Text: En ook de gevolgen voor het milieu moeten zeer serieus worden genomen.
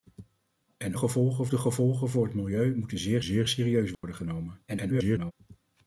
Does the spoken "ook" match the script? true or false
false